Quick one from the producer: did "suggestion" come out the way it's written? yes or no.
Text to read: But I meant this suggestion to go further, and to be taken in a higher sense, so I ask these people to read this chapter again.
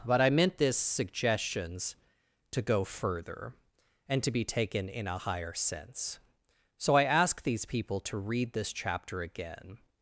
no